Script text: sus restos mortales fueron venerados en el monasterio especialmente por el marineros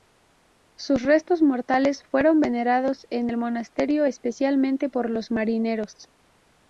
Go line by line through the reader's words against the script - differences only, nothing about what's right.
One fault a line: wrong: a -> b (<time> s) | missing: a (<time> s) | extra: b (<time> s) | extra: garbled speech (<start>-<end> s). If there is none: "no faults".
wrong: el -> los (5.1 s)